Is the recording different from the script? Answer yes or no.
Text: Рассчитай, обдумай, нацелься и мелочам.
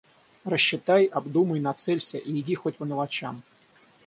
yes